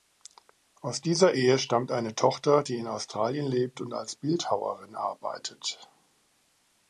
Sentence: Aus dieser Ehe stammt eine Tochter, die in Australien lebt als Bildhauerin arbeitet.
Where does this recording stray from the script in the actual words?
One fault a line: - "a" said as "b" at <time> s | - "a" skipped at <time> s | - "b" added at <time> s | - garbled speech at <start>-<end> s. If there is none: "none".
- "und" added at 3.8 s